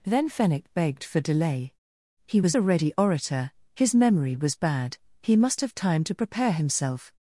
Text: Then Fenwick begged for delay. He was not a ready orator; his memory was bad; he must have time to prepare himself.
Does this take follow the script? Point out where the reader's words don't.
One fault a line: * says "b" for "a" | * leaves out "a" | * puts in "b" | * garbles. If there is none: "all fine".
* leaves out "not"